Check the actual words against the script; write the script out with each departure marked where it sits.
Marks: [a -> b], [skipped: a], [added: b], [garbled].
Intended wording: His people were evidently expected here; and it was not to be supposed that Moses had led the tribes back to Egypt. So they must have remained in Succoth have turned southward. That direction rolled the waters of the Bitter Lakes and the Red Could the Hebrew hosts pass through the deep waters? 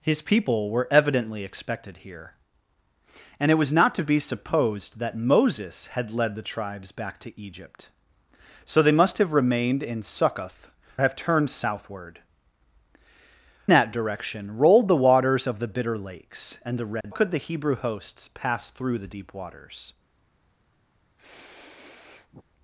His people were evidently expected here; and it was not to be supposed that Moses had led the tribes back to Egypt. So they must have remained in Succoth have turned southward. That direction rolled the waters of the Bitter Lakes and the Red Could the Hebrew hosts pass through the deep waters?